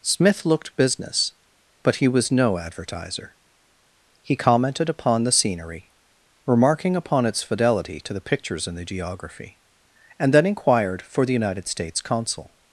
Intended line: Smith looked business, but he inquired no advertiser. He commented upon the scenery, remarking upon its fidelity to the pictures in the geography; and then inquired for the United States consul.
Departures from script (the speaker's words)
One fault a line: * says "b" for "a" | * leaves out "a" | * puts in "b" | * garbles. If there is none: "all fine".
* says "was" for "inquired"